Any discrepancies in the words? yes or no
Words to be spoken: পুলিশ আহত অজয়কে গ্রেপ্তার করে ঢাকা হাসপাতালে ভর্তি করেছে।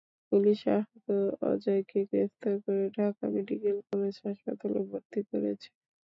yes